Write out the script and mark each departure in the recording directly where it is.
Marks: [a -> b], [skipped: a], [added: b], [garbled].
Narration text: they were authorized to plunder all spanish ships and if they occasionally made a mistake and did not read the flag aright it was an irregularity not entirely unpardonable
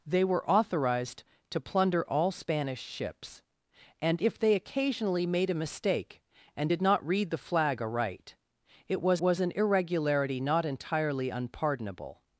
they were authorized to plunder all spanish ships and if they occasionally made a mistake and did not read the flag aright it was [added: was] an irregularity not entirely unpardonable